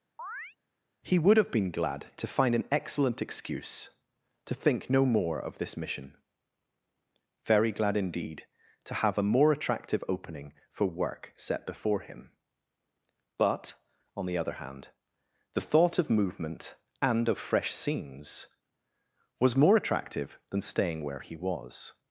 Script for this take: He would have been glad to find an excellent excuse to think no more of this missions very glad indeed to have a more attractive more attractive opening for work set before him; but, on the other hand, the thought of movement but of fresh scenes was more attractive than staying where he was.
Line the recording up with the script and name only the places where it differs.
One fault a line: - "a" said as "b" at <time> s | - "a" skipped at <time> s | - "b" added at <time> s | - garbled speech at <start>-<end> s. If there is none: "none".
- "missions" said as "mission" at 5.8 s
- "more attractive" skipped at 10.0 s
- "but" said as "and" at 17.0 s